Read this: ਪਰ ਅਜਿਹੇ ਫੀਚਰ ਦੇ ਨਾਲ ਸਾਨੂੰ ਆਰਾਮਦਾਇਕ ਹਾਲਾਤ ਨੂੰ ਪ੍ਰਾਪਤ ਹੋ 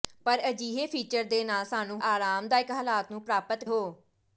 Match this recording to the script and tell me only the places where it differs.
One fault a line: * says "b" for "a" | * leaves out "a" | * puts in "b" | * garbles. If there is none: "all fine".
all fine